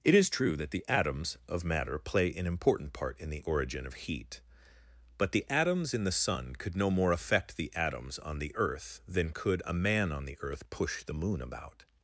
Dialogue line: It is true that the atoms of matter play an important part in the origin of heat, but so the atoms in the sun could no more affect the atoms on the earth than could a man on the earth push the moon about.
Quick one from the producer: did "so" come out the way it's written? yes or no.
no